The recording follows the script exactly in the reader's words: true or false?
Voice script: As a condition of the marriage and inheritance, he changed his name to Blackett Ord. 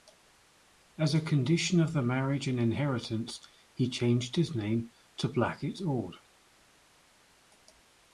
true